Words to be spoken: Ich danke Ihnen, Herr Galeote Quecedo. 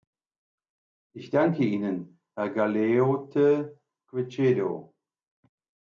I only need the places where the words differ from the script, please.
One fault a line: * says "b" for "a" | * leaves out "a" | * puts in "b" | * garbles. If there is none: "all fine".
all fine